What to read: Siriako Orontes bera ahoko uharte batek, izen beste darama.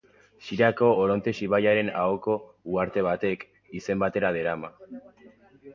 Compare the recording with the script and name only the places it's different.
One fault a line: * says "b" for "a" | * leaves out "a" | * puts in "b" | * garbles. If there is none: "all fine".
* says "ibaiaren" for "bera"
* says "bera" for "beste"